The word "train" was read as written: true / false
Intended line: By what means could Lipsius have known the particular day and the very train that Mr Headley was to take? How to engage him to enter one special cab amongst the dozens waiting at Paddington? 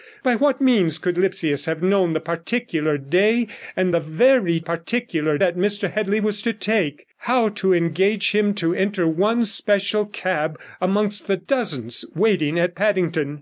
false